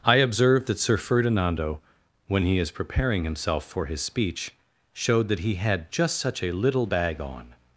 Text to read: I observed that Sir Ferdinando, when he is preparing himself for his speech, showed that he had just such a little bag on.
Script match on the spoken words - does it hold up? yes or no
yes